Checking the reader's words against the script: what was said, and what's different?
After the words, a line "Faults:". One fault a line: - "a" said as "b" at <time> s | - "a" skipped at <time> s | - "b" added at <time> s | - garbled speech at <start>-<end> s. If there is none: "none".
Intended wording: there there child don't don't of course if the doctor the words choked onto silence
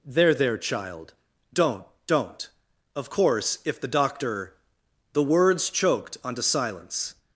there there child don't don't of course if the doctor the words choked onto silence
Faults:
none